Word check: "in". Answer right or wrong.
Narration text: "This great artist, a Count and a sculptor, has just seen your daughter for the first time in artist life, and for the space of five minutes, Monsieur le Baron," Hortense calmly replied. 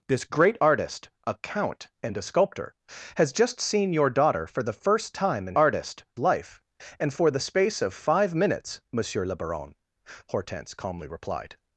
right